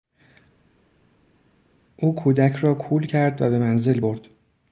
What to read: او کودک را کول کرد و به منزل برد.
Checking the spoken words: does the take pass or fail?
pass